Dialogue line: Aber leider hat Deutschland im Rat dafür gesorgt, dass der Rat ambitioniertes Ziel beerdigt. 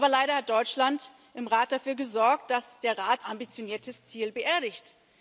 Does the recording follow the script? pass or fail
pass